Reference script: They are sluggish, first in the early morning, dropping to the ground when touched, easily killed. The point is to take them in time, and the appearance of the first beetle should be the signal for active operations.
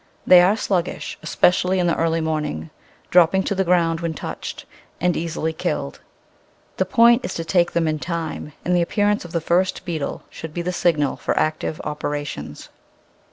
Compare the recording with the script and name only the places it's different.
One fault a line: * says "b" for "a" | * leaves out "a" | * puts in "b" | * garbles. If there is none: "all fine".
* says "especially" for "first"
* puts in "and"